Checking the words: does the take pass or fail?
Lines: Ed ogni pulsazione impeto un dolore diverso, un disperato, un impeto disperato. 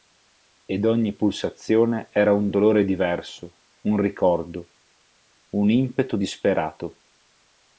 fail